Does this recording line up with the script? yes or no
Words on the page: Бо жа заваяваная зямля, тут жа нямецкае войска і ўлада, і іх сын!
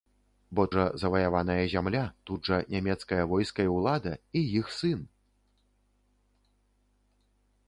yes